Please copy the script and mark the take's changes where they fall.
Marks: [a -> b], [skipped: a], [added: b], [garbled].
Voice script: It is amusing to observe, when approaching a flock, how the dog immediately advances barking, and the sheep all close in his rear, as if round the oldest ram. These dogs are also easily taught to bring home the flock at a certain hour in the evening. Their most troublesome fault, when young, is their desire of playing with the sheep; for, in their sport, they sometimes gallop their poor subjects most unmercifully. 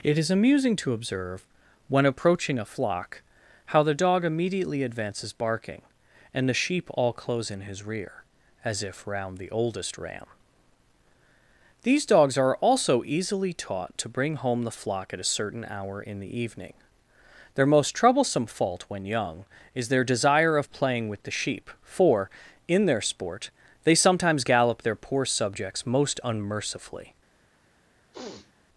It is amusing to observe, when approaching a flock, how the dog immediately advances barking, and the sheep all close in his rear, as if round the oldest ram. These dogs are also easily taught to bring home the flock at a certain hour in the evening. Their most troublesome fault, when young, is their desire of playing with the sheep; for, in their sport, they sometimes gallop their poor subjects most unmercifully.